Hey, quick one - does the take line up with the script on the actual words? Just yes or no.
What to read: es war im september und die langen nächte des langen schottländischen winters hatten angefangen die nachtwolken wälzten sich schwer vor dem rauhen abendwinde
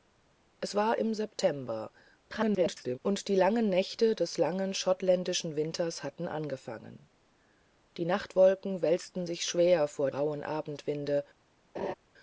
no